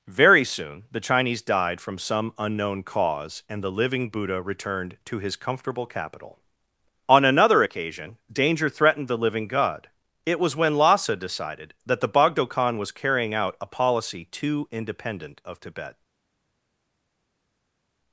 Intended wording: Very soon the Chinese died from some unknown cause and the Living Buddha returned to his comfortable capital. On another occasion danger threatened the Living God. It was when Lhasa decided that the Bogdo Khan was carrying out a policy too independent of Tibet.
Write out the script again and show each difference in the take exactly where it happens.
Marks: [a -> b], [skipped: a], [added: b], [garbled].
Very soon the Chinese died from some unknown cause and the Living Buddha returned to his comfortable capital. On another occasion danger threatened the Living God. It was when Lhasa decided that the Bogdo Khan was carrying out a policy too independent of Tibet.